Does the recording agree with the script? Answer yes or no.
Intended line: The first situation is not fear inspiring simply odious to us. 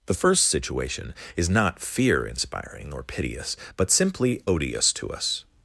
no